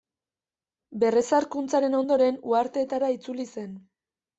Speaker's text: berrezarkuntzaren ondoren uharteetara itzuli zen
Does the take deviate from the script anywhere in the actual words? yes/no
no